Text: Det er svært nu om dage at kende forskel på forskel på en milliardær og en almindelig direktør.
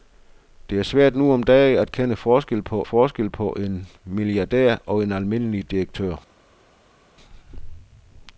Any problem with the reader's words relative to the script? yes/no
no